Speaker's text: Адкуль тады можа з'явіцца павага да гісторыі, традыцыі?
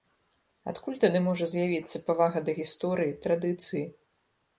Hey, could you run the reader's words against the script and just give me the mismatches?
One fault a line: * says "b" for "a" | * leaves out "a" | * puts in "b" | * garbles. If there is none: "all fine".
all fine